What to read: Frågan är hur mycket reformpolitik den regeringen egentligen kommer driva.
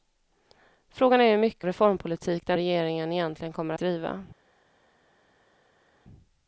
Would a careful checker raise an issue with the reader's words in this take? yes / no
no